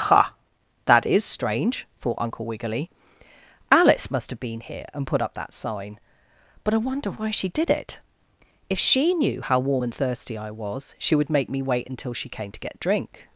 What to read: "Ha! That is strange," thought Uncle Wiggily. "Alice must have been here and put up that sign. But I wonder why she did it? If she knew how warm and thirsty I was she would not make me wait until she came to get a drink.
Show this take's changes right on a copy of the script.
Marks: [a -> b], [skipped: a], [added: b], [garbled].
"Ha! That is strange," thought Uncle Wiggily. "Alice must have been here and put up that sign. But I wonder why she did it? If she knew how warm and thirsty I was she would [skipped: not] make me wait until she came to get [skipped: a] drink.